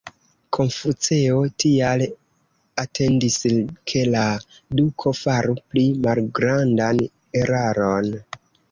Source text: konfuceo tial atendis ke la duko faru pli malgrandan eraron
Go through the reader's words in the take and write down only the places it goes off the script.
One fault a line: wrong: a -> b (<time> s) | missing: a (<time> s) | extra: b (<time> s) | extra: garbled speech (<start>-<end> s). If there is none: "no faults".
no faults